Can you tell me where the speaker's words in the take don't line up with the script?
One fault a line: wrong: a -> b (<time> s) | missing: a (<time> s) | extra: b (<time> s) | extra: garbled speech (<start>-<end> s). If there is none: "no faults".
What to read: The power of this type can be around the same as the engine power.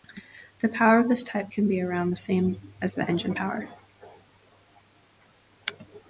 no faults